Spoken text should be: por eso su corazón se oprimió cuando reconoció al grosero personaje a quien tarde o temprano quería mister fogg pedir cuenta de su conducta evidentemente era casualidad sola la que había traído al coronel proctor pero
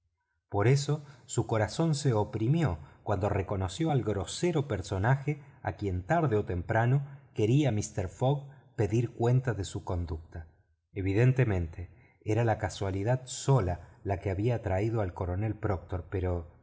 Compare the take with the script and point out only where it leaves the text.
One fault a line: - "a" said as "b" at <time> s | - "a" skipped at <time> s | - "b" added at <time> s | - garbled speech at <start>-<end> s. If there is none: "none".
- "la" added at 12.4 s